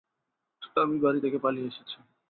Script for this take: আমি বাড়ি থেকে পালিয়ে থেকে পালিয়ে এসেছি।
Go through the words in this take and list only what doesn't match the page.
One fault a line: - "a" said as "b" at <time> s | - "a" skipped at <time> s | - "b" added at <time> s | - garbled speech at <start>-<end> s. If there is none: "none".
- "থেকে পালিয়ে" skipped at 1.7 s